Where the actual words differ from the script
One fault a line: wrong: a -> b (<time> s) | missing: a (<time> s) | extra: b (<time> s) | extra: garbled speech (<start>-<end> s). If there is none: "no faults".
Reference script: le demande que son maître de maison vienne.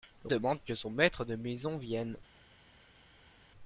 no faults